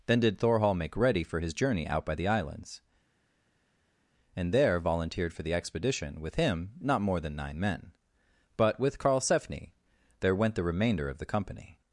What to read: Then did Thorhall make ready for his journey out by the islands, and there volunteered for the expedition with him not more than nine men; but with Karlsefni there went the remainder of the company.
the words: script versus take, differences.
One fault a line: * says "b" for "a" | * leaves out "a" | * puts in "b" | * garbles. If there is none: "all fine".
all fine